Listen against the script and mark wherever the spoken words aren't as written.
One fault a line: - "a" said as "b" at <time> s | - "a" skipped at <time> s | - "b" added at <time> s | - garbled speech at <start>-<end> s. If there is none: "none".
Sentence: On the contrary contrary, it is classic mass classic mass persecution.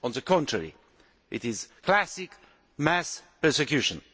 - "contrary" skipped at 0.7 s
- "classic mass" skipped at 3.2 s